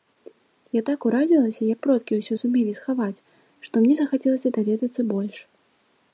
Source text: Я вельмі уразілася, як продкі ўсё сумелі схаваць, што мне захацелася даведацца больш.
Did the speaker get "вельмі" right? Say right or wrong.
wrong